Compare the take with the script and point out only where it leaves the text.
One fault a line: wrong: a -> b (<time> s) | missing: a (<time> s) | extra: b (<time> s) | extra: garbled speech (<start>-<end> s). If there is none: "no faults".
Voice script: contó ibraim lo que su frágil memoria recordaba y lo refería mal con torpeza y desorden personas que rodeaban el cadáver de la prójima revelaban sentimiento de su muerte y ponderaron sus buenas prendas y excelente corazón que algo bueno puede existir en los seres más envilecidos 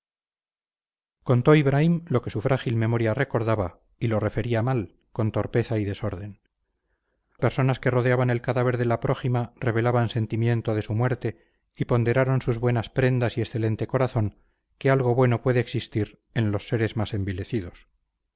no faults